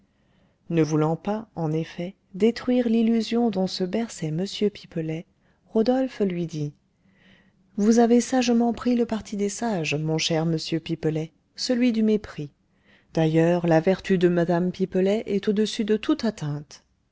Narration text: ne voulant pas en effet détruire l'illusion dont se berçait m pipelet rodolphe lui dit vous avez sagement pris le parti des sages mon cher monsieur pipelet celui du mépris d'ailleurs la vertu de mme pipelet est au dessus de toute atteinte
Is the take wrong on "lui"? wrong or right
right